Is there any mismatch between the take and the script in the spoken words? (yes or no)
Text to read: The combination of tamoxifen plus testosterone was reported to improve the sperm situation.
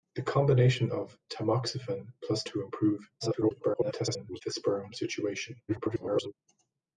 yes